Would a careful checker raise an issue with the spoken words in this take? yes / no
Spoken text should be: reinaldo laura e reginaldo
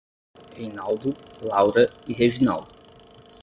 no